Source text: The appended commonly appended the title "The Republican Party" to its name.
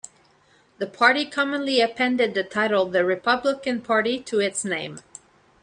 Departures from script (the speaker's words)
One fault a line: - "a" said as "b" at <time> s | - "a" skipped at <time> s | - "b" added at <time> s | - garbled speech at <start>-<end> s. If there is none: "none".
- "appended" said as "party" at 0.9 s